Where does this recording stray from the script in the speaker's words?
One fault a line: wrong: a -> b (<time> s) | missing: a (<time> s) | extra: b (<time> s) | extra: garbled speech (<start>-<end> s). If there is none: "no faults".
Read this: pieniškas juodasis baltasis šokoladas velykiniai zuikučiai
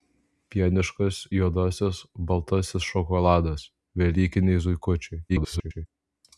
extra: garbled speech (5.3-5.9 s)